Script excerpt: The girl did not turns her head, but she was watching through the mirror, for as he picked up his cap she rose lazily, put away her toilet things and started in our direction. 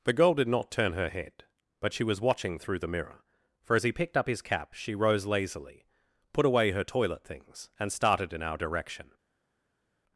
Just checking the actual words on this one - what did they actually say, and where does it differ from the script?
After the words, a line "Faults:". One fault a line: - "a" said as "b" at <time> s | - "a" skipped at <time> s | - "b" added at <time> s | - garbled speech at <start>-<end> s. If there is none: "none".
The girl did not turn her head, but she was watching through the mirror, for as he picked up his cap she rose lazily, put away her toilet things and started in our direction.
Faults:
- "turns" said as "turn" at 0.7 s